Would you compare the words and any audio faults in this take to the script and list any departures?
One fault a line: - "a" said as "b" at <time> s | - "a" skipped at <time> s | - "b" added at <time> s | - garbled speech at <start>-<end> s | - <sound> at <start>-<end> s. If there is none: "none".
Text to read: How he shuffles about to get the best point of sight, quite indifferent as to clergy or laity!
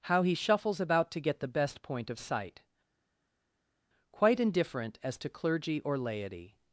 none